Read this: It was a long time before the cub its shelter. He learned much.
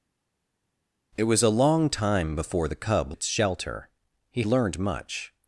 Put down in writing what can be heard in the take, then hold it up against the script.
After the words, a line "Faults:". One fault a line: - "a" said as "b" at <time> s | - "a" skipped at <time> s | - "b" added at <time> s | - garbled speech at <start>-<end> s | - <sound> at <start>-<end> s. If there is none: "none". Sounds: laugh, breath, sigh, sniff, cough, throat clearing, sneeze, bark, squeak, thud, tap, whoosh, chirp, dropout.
It was a long time before the cub its shelter. He learned much.
Faults:
none